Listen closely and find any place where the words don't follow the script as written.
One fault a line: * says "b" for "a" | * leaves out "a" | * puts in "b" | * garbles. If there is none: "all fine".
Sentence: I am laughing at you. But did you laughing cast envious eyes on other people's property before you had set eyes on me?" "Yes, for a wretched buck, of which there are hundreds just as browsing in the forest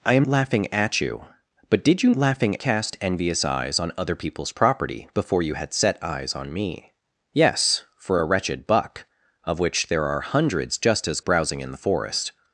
all fine